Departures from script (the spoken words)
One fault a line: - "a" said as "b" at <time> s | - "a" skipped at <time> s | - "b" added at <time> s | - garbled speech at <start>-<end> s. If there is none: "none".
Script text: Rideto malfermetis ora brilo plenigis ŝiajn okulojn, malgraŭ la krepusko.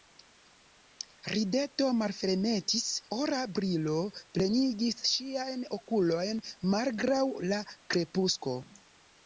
none